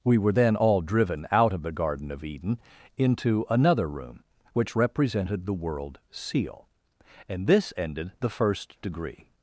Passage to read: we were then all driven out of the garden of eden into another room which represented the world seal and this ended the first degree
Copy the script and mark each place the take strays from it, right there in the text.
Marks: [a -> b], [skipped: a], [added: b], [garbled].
we were then all driven out of the garden of eden into another room which represented the world seal and this ended the first degree